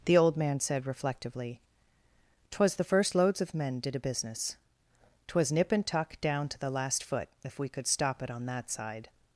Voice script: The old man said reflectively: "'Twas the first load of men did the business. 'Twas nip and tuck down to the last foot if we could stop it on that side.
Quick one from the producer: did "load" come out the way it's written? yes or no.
no